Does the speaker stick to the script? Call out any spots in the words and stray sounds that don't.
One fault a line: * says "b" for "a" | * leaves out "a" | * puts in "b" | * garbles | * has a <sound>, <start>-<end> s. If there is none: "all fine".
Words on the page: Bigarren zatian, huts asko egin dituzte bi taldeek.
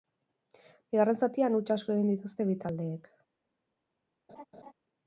* has a laugh, 4.3-4.7 s